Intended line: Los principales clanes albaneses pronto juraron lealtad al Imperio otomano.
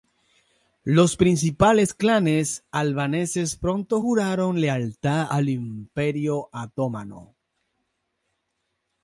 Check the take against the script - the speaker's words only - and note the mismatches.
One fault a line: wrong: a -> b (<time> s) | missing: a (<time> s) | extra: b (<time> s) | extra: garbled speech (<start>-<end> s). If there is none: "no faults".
no faults